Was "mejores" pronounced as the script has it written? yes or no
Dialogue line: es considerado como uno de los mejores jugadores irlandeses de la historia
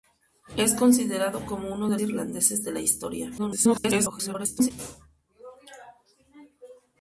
no